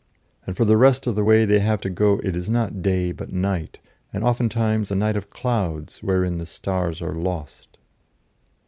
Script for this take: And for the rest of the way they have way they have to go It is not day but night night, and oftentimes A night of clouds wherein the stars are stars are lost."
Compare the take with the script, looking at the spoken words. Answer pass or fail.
fail